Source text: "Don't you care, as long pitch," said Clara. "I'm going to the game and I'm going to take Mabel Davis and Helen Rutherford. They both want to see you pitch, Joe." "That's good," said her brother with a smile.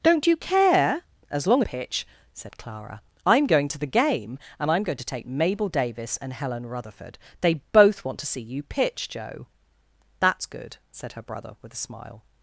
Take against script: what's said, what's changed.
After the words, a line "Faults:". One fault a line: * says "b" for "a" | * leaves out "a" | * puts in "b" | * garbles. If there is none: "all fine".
"Don't you care, as long pitch," said Clara. "I'm going to the game and I'm going to take Mabel Davis and Helen Rutherford. They both want to see you pitch, Joe." "That's good," said her brother with a smile.
Faults:
all fine